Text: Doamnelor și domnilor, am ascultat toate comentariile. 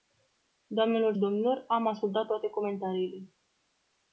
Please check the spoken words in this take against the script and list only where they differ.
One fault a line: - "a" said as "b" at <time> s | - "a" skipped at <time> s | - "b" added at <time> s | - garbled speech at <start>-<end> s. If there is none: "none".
- "și" skipped at 1.1 s